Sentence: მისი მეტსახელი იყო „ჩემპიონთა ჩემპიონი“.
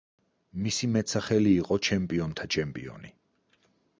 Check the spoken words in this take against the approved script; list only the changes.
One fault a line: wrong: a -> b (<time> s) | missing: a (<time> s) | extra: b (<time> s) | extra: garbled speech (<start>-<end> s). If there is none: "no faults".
no faults